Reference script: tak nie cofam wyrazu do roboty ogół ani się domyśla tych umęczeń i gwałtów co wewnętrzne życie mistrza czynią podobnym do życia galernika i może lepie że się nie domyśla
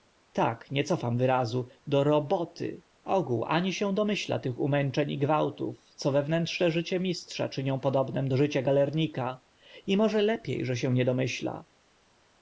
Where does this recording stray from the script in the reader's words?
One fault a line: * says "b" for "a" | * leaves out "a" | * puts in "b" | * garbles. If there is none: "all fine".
all fine